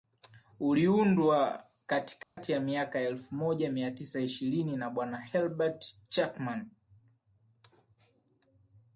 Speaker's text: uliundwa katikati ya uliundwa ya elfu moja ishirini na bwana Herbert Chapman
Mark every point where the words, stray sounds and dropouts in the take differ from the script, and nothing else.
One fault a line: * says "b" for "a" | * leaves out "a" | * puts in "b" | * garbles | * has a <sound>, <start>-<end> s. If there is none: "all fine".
* has a dropout, 2.2-2.4 s
* says "miaka" for "uliundwa"
* puts in "mia tisa"